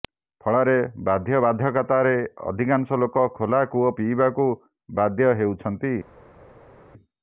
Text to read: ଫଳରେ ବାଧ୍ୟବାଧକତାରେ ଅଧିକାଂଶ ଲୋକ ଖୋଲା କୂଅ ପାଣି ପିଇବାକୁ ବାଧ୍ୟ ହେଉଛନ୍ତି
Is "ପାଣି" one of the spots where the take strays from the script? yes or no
yes